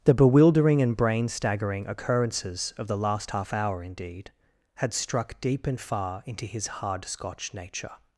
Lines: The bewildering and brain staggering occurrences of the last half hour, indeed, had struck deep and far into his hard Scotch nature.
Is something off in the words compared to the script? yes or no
no